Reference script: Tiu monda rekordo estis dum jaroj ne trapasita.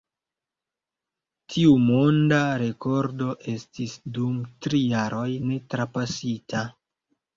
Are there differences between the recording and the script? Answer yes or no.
yes